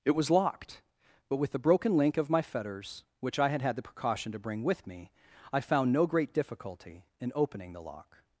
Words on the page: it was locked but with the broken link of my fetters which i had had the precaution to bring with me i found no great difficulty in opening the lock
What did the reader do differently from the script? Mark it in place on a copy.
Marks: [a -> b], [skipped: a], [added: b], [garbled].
it was locked but with the broken link of my fetters which i had had the precaution to bring with me i found no great difficulty in opening the lock